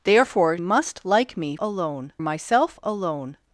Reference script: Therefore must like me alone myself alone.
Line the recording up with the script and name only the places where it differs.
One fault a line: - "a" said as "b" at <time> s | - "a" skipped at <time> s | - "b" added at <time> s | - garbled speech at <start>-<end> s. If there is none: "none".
none